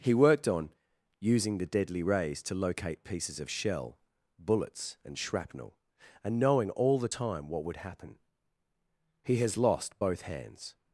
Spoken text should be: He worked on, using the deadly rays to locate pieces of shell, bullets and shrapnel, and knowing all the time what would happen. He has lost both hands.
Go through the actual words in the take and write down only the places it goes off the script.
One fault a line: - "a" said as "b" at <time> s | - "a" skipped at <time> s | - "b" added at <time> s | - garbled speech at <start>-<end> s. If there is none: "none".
none